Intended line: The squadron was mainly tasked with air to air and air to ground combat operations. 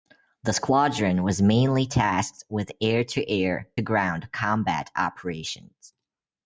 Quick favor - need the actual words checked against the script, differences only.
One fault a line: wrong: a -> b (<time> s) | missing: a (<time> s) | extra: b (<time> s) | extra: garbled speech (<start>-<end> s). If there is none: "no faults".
missing: and air to (3.7 s)